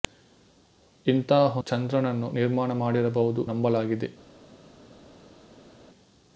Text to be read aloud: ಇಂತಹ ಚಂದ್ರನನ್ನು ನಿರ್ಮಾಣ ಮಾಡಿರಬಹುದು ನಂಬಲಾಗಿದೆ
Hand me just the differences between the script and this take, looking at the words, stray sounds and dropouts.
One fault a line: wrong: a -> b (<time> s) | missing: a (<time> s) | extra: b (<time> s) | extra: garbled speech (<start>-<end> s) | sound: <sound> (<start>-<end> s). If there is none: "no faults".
no faults